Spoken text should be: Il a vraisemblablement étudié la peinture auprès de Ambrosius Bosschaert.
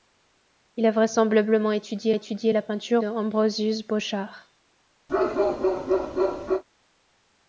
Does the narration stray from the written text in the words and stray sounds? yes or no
yes